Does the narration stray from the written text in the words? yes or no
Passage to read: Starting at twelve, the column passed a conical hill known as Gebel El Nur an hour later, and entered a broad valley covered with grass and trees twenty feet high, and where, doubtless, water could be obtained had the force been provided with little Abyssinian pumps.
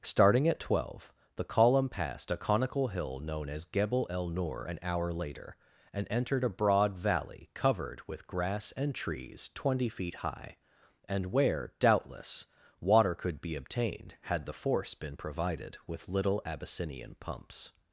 no